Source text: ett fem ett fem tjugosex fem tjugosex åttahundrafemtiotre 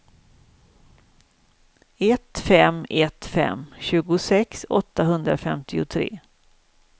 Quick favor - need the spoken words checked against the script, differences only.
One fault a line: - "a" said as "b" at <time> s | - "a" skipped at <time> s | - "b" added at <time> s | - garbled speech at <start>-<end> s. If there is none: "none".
- "fem tjugosex" skipped at 4.7 s